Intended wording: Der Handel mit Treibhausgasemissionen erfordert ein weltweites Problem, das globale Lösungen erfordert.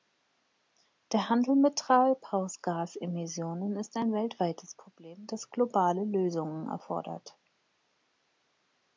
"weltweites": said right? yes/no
yes